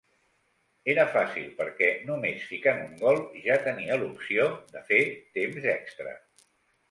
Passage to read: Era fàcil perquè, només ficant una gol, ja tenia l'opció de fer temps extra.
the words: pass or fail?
fail